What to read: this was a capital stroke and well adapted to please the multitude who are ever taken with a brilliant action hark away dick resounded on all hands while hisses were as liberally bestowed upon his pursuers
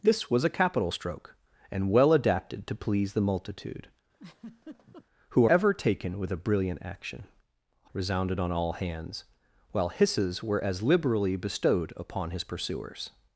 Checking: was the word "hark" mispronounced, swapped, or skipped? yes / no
yes